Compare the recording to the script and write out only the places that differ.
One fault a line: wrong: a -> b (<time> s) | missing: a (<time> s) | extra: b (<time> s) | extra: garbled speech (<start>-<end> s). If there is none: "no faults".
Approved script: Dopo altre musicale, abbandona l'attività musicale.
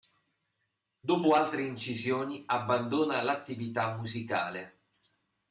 wrong: musicale -> incisioni (1.7 s)